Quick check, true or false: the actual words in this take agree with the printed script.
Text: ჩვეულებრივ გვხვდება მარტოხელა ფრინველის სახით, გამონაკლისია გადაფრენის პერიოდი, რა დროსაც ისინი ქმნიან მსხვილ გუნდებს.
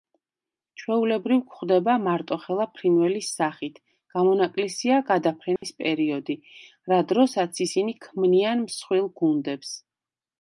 true